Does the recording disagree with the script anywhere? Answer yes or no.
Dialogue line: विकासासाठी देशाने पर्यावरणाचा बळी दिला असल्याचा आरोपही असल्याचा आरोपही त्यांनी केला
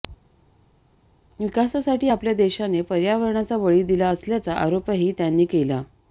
yes